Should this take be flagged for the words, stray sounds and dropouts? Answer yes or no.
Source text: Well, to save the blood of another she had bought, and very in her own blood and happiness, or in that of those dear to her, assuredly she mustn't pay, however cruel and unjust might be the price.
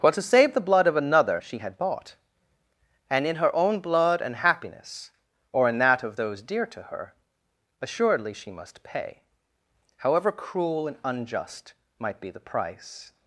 yes